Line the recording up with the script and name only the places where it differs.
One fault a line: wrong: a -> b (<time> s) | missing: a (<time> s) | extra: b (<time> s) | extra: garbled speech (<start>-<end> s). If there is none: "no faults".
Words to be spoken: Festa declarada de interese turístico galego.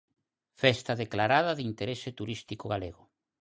no faults